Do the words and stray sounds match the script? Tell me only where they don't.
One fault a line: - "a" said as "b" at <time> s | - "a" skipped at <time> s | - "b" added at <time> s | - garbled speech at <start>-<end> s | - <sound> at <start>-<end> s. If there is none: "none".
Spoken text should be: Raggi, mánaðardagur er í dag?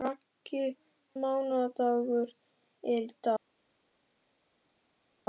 none